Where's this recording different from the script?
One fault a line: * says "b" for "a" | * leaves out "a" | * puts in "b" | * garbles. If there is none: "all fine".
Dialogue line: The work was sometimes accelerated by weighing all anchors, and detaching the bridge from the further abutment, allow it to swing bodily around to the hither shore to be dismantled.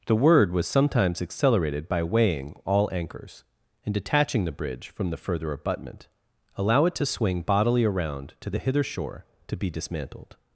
* says "word" for "work"